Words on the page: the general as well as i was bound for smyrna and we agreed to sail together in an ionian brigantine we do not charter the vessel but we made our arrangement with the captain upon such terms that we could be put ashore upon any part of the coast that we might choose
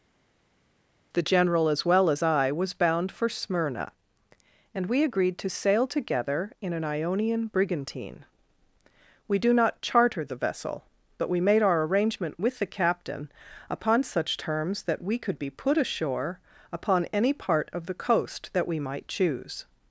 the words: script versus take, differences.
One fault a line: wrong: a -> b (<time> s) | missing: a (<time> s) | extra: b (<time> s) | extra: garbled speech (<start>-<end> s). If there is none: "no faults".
no faults